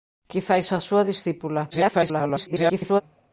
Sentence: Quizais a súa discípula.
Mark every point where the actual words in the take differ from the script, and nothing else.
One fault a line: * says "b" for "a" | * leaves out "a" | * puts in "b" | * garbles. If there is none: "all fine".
* garbles